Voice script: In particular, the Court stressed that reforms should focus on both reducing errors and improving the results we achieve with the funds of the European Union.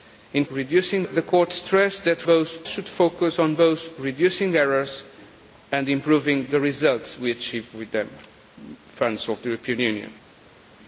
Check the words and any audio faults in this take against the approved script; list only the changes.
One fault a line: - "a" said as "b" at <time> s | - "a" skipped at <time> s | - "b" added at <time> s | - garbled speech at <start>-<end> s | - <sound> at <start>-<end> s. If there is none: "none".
- "particular" said as "reducing" at 0.5 s
- "reforms" said as "both" at 2.2 s